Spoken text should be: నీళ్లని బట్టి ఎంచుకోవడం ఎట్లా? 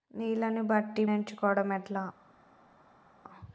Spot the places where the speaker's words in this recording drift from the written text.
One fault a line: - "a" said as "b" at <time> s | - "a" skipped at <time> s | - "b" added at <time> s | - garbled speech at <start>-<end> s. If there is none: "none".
none